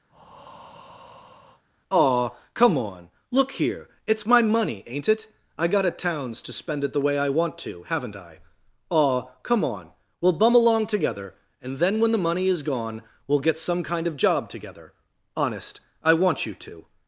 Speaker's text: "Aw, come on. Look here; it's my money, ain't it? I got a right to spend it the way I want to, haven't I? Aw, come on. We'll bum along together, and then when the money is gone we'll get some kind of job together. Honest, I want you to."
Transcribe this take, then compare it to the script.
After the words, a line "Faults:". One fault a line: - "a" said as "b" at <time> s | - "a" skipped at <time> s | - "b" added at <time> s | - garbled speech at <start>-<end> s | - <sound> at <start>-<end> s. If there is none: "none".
"Aw, come on. Look here; it's my money, ain't it? I got a towns to spend it the way I want to, haven't I? Aw, come on. We'll bum along together, and then when the money is gone we'll get some kind of job together. Honest, I want you to."
Faults:
- breath at 0.1-1.6 s
- "right" said as "towns" at 5.9 s